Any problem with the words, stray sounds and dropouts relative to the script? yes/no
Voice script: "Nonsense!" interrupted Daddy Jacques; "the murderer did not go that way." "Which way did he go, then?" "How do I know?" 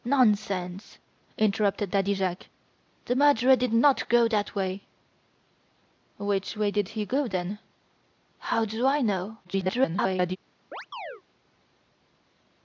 yes